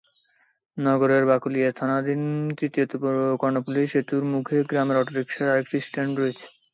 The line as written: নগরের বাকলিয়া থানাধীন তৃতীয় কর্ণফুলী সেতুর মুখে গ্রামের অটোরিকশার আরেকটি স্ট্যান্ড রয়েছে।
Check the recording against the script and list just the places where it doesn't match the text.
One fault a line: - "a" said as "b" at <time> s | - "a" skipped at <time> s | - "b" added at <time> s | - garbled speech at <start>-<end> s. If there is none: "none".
none